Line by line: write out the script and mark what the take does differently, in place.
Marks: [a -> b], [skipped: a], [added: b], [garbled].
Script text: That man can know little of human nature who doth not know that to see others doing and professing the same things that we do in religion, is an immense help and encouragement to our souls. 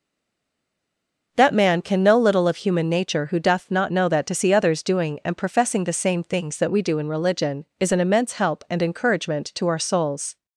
That man can know little of human nature who doth not know that to see others doing and professing the same things that we do in religion, is an immense help and encouragement to our souls.